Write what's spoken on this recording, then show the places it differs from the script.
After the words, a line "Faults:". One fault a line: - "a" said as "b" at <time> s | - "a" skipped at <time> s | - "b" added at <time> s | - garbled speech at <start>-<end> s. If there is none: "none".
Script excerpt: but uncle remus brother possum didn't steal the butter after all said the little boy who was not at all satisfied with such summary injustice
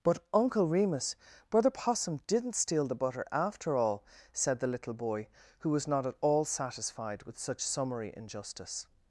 but uncle remus brother possum didn't steal the butter after all said the little boy who was not at all satisfied with such summary injustice
Faults:
none